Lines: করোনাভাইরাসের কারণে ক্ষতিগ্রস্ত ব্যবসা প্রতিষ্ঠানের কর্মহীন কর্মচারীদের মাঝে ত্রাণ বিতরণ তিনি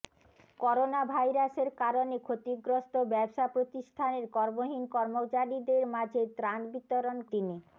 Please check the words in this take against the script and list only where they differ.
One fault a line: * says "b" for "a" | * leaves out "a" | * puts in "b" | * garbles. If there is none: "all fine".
all fine